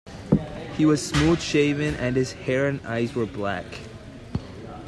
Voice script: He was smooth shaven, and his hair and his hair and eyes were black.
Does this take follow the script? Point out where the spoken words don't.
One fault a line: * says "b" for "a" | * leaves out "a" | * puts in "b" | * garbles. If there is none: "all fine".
* leaves out "his hair and"